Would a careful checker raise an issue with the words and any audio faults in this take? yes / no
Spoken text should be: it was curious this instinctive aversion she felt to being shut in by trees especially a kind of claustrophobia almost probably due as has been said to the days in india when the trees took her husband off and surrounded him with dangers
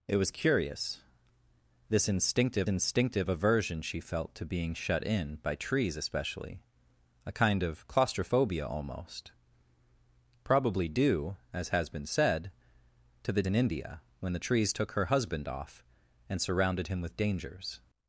yes